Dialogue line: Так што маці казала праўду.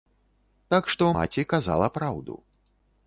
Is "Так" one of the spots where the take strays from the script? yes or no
no